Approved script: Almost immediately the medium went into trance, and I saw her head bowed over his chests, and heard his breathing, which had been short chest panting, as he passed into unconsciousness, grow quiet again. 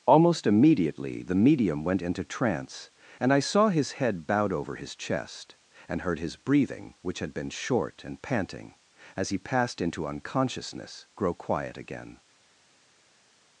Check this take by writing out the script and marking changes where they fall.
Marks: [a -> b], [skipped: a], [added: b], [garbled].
Almost immediately the medium went into trance, and I saw [her -> his] head bowed over his [chests, -> chest] and heard his breathing, which had been short [chest -> and] panting, as he passed into unconsciousness, grow quiet again.